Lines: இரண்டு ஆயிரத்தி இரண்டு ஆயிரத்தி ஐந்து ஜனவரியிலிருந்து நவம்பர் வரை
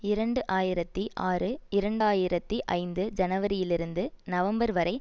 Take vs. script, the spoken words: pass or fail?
fail